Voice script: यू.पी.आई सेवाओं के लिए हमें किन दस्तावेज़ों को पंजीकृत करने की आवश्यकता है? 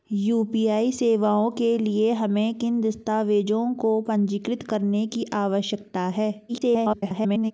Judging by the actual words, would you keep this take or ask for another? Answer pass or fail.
fail